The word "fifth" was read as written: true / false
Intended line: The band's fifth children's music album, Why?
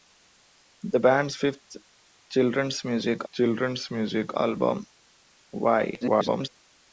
true